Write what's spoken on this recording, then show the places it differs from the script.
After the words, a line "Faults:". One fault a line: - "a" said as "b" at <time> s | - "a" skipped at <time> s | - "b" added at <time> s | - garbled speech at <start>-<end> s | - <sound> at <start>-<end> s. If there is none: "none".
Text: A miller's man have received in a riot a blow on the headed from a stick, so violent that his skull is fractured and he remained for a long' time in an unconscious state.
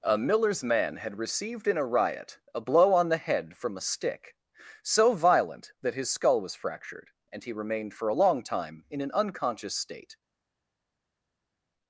A miller's man had received in a riot a blow on the head from a stick, so violent that his skull was fractured and he remained for a long' time in an unconscious state.
Faults:
- "have" said as "had" at 0.9 s
- "headed" said as "head" at 3.2 s
- "is" said as "was" at 6.4 s